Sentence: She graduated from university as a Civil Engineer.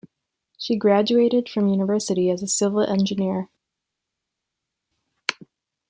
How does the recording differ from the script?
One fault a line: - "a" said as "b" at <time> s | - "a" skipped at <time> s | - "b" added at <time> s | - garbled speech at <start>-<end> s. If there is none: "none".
none